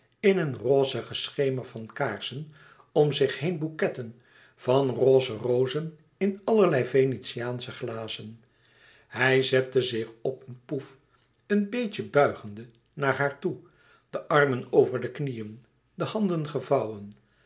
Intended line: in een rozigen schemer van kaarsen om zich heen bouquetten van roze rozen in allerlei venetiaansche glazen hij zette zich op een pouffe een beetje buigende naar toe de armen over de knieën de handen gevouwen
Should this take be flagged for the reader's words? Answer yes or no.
yes